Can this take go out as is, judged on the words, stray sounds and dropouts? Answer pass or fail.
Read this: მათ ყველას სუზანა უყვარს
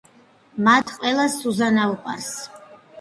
fail